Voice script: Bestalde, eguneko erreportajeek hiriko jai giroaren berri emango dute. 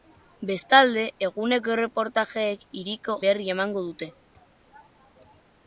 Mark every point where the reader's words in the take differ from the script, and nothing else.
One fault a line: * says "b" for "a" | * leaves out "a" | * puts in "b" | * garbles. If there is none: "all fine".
* leaves out "jai giroaren"